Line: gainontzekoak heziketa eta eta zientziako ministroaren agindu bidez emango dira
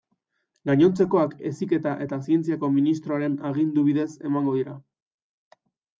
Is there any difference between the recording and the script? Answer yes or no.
yes